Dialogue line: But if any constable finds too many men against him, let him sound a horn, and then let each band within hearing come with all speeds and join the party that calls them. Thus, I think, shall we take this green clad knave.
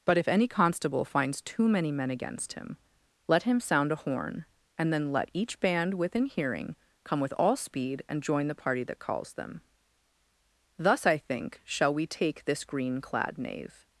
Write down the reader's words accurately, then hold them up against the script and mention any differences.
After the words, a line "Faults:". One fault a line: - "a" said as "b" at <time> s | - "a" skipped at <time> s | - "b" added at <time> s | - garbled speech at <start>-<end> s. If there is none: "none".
But if any constable finds too many men against him, let him sound a horn, and then let each band within hearing come with all speed and join the party that calls them. Thus, I think, shall we take this green clad knave.
Faults:
- "speeds" said as "speed" at 7.5 s